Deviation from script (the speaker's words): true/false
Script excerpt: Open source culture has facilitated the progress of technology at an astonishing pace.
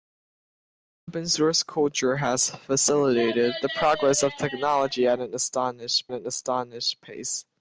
true